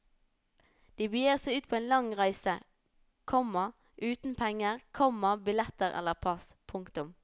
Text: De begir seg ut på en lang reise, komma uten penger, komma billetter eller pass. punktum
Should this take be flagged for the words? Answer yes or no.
no